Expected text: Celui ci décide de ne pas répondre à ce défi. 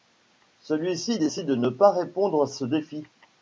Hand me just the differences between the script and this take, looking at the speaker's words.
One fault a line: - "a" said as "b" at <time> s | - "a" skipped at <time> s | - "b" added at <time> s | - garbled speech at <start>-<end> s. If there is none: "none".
none